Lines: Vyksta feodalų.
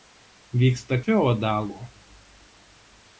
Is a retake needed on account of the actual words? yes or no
no